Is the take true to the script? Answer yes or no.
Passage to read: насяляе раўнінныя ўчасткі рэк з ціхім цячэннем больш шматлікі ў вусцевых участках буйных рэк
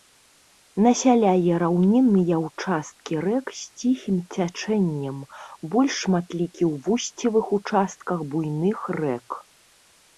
yes